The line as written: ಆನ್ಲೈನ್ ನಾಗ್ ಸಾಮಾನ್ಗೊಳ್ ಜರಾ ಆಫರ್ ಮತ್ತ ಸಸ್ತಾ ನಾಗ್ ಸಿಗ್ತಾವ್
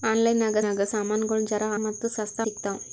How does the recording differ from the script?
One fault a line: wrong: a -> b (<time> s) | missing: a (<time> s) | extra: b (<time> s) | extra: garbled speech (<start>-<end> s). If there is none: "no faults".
extra: ನಾಗ್ (0.6 s)
missing: ಆಫರ್ (1.7 s)
missing: ನಾಗ್ (2.4 s)